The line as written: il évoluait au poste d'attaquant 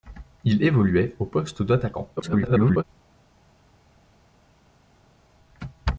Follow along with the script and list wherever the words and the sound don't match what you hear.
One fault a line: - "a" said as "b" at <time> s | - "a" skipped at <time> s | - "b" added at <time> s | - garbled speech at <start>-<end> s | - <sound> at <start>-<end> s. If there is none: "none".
- garbled speech at 2.2-2.8 s